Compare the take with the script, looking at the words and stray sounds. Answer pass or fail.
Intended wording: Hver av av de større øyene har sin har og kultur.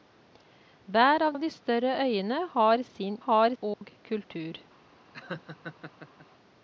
fail